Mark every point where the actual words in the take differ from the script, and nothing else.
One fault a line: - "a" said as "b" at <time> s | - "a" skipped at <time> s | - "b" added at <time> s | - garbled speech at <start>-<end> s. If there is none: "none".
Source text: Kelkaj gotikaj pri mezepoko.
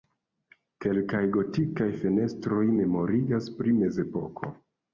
- "fenestroj memorigas" added at 2.0 s